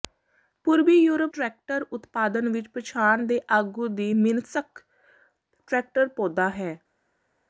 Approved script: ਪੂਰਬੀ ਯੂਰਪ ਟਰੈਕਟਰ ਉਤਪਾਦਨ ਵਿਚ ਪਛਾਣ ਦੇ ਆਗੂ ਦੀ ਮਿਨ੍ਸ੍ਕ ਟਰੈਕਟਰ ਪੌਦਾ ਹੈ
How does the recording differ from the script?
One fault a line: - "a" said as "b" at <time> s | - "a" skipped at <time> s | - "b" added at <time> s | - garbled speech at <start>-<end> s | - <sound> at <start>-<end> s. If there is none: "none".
none